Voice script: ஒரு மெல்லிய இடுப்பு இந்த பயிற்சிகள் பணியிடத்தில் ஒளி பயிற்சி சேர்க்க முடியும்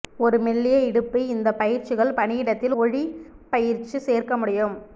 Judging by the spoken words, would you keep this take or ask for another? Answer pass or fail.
pass